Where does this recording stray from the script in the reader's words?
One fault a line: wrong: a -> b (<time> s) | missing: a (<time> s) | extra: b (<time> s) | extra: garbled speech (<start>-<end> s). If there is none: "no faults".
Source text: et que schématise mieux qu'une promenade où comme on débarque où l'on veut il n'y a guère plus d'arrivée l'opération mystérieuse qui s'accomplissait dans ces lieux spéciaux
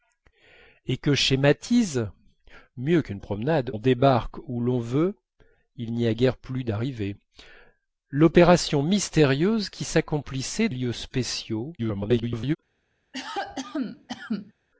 missing: où comme (3.7 s)
missing: dans ces (10.7 s)
extra: garbled speech (11.8-12.6 s)